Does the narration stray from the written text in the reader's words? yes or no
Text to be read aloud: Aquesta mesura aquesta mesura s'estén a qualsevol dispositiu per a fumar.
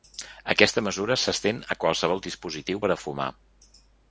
yes